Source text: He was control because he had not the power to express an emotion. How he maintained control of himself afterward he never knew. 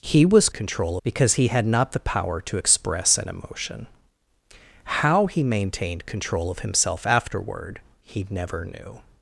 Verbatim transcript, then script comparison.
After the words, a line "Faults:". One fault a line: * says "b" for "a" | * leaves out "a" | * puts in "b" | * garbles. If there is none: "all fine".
He was control because he had not the power to express an emotion. How he maintained control of himself afterward he never knew.
Faults:
all fine